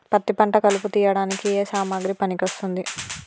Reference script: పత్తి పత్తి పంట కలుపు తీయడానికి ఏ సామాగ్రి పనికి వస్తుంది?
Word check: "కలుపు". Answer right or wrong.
right